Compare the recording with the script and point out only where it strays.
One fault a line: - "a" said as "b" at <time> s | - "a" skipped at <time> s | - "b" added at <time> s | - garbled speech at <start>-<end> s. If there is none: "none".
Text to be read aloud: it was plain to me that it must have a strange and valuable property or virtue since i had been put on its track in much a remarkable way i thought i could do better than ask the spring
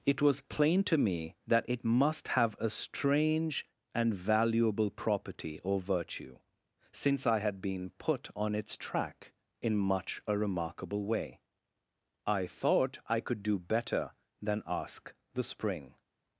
none